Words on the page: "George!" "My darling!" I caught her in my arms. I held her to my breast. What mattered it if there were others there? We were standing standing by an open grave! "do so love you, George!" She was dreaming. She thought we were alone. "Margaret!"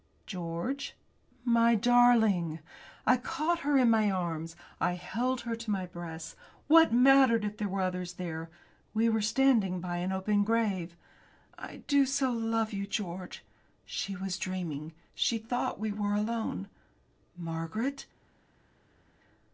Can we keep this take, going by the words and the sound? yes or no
no